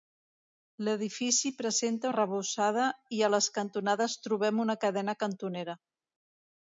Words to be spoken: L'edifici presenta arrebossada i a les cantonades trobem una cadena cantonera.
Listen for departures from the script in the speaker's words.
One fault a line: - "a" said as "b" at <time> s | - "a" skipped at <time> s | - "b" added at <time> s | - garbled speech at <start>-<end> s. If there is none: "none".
none